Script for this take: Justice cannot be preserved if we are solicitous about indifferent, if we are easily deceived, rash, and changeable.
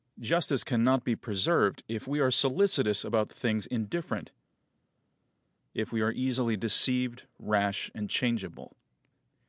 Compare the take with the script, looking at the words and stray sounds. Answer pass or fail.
fail